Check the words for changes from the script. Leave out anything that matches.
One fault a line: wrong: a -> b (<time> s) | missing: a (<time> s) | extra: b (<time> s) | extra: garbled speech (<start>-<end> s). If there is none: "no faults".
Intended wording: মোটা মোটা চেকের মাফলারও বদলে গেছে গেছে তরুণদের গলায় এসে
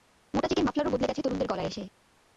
missing: মোটা (0.5 s)
missing: গেছে (1.2 s)